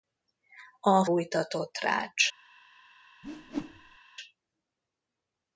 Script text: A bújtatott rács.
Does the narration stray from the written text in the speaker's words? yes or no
no